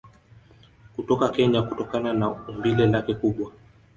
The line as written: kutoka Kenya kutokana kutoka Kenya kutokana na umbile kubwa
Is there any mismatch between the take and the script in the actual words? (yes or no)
yes